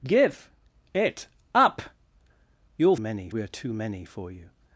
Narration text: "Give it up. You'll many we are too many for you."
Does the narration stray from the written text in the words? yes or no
no